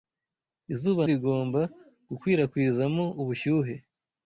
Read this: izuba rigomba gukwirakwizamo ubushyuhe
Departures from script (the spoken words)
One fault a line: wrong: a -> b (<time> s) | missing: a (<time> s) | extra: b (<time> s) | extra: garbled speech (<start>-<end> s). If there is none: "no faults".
no faults